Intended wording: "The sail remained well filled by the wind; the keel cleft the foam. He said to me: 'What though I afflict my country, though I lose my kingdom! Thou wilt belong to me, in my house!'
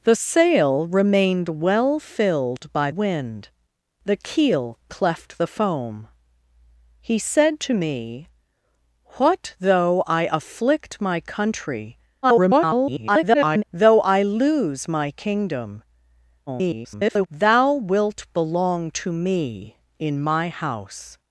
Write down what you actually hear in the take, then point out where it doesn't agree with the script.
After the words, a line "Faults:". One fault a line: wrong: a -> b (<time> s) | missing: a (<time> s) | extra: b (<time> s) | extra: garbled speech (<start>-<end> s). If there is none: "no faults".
"The sail remained well filled by wind; the keel cleft the foam. He said to me: 'What though I afflict my country, [garbled] though I lose my kingdom! [garbled] Thou wilt belong to me, in my house!'
Faults:
missing: the (2.9 s)
extra: garbled speech (12.2-13.6 s)
extra: garbled speech (16.5-17.3 s)